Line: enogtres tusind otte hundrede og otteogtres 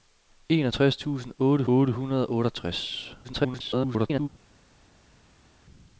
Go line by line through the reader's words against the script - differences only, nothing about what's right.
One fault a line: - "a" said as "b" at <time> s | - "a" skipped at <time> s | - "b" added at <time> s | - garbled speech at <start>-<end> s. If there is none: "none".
- "otte" added at 1.7 s
- garbled speech at 3.2-4.3 s